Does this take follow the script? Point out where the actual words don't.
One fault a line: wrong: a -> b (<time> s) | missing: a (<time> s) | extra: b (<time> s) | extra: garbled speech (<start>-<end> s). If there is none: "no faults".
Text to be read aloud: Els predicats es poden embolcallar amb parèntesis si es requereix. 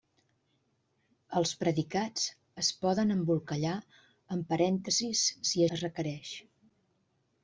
no faults